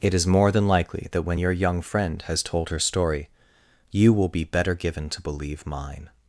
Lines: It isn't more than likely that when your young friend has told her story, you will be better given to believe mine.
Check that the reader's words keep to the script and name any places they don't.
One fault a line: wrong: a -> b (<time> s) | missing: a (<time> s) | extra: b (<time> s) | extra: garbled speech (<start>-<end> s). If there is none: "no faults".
wrong: isn't -> is (0.1 s)